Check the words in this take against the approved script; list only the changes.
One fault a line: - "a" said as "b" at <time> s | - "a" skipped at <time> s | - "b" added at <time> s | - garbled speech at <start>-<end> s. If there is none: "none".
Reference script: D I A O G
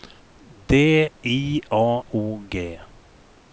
none